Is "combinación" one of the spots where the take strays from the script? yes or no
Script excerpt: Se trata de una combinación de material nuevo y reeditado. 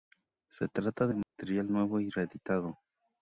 yes